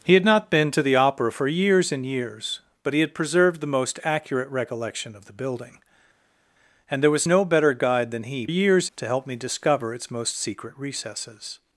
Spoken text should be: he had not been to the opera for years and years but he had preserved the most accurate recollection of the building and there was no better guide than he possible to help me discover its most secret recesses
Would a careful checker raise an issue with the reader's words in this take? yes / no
yes